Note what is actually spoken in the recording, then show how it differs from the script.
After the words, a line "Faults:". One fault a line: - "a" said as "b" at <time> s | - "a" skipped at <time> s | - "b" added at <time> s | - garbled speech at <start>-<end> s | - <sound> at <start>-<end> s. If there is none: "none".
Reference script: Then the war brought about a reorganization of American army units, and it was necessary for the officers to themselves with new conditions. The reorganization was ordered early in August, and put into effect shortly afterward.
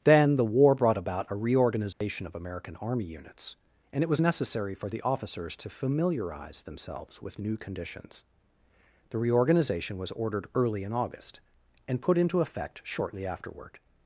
Then the war brought about a reorganization of American army units, and it was necessary for the officers to familiarize themselves with new conditions. The reorganization was ordered early in August, and put into effect shortly afterward.
Faults:
- dropout at 1.9-2.0 s
- "familiarize" added at 5.7 s